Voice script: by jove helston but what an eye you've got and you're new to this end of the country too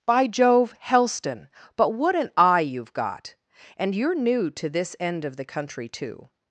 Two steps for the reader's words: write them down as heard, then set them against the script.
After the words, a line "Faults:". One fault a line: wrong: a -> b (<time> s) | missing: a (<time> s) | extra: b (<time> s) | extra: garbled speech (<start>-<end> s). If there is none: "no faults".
by jove helston but what an eye you've got and you're new to this end of the country too
Faults:
no faults